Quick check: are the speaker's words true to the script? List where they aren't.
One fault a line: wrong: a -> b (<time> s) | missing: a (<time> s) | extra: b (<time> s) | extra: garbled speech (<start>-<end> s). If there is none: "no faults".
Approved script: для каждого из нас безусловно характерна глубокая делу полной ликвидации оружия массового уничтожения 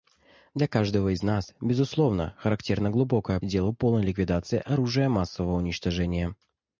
no faults